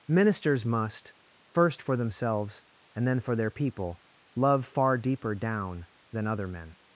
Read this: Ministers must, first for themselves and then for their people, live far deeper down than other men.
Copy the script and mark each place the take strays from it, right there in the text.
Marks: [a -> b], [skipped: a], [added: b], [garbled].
Ministers must, first for themselves and then for their people, [live -> love] far deeper down than other men.